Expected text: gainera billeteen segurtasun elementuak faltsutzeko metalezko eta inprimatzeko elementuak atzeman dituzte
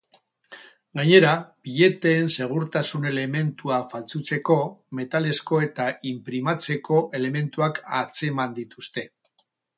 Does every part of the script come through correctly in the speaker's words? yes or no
yes